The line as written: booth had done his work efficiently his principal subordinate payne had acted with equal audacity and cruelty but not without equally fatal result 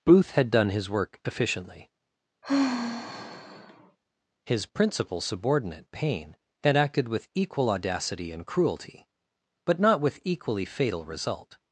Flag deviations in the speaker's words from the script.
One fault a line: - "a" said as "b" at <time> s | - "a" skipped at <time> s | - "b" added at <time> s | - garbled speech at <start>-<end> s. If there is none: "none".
- "without" said as "with" at 10.0 s